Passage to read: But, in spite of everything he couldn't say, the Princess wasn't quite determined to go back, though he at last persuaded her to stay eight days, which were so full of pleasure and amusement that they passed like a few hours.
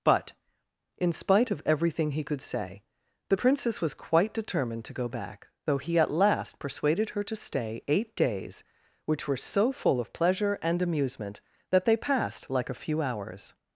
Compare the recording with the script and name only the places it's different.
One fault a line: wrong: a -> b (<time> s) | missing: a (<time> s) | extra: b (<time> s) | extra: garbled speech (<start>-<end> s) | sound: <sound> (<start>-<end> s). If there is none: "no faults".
wrong: couldn't -> could (2.2 s)
wrong: wasn't -> was (3.8 s)